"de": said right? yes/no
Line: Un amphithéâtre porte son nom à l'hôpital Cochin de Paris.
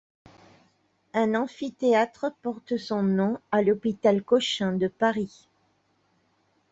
yes